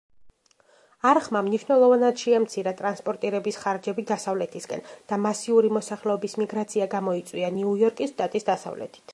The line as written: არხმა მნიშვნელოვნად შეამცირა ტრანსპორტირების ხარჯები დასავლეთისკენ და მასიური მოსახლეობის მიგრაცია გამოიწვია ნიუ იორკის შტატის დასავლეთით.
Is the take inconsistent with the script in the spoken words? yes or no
no